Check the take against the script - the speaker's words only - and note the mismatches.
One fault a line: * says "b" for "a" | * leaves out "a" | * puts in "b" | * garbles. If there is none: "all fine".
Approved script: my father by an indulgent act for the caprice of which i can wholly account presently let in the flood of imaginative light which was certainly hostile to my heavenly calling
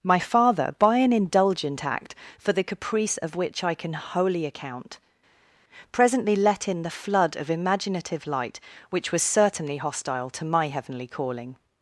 all fine